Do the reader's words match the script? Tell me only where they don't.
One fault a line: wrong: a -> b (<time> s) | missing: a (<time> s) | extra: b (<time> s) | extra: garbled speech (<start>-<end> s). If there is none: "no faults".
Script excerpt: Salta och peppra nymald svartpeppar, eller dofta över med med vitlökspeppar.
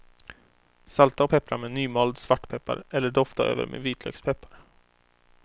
extra: med (1.6 s)
missing: med (3.8 s)